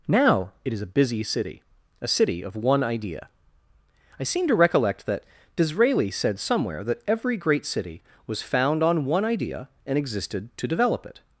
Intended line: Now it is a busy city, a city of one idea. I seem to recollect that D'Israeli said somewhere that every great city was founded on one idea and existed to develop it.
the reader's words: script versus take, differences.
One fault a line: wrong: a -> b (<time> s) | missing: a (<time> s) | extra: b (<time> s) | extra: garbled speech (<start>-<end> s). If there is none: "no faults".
wrong: founded -> found (8.4 s)